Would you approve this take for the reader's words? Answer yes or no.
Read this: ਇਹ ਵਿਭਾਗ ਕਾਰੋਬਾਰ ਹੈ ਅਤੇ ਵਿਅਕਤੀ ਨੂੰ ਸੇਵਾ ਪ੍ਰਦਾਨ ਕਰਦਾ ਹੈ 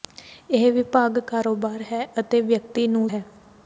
no